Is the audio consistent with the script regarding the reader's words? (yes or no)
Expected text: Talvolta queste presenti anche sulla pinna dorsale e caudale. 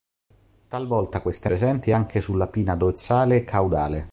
yes